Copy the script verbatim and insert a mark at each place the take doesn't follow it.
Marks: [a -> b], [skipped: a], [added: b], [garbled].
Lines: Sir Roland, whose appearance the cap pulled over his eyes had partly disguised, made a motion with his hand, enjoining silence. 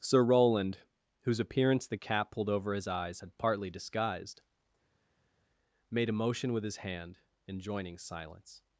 Sir Roland, whose appearance the cap pulled over his eyes had partly disguised, made a motion with his hand, enjoining silence.